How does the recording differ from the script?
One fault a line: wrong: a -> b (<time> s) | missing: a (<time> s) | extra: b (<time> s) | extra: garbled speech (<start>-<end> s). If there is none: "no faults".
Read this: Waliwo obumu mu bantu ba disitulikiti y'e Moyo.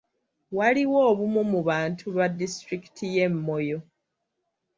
no faults